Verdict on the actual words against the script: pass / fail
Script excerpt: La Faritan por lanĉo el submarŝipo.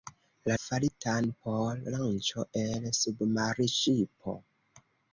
pass